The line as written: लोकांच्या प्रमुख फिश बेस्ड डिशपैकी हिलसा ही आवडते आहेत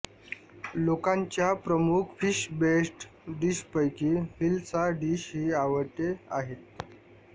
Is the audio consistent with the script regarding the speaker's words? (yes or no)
no